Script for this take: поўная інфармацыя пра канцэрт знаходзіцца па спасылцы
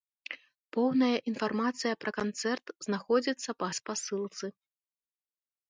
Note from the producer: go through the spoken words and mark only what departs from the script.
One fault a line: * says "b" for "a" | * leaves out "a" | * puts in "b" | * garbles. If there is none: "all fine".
all fine